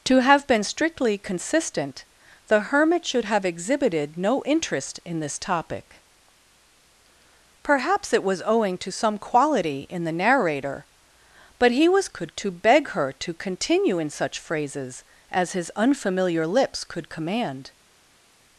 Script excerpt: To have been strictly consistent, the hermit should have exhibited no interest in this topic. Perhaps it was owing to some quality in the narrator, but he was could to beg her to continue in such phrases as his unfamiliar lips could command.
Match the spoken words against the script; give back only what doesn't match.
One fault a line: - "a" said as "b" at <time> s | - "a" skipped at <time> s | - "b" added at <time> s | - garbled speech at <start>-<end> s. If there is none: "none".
none